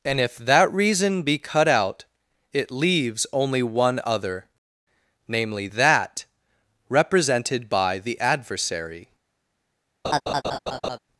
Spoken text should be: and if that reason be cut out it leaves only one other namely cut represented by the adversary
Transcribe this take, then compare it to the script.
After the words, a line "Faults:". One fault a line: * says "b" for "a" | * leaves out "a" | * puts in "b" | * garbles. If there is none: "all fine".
and if that reason be cut out it leaves only one other namely that represented by the adversary
Faults:
* says "that" for "cut"